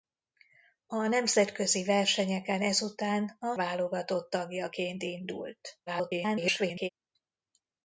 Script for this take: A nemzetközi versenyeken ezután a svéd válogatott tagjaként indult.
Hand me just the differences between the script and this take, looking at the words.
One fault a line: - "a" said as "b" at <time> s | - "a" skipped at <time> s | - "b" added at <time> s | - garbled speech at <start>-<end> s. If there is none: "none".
- "svéd" skipped at 3.6 s
- garbled speech at 5.9-6.9 s